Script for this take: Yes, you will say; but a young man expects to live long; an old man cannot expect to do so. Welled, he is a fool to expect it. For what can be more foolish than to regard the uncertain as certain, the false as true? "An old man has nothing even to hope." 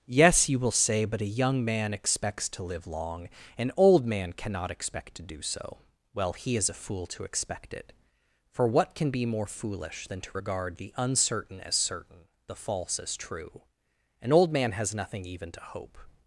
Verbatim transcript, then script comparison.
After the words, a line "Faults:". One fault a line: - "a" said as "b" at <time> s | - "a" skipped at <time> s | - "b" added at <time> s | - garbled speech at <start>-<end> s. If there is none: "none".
Yes, you will say; but a young man expects to live long; an old man cannot expect to do so. Well, he is a fool to expect it. For what can be more foolish than to regard the uncertain as certain, the false as true? "An old man has nothing even to hope."
Faults:
- "Welled" said as "Well" at 6.2 s